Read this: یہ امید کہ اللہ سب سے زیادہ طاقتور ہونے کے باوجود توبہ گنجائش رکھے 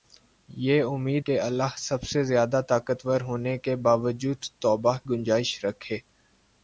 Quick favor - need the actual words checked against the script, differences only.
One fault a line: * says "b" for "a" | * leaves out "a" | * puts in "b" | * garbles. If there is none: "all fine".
all fine